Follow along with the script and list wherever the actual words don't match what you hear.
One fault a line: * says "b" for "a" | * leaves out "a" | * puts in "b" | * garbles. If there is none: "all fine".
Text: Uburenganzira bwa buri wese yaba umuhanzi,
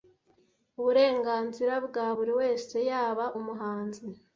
all fine